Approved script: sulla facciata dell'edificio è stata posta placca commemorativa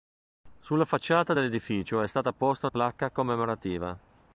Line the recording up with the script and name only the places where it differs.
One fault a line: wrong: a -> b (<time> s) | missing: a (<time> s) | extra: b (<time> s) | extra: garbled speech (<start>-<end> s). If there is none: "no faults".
no faults